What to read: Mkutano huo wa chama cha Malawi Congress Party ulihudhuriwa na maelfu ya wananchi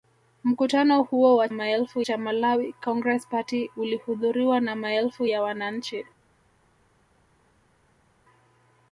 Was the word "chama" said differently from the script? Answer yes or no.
yes